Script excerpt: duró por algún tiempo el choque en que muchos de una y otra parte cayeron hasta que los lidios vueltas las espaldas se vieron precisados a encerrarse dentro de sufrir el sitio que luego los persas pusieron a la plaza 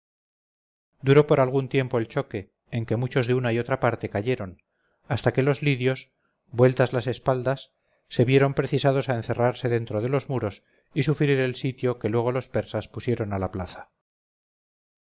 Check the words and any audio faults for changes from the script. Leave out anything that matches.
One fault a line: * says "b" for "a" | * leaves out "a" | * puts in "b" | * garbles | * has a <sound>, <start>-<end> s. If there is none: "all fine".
* puts in "los muros y"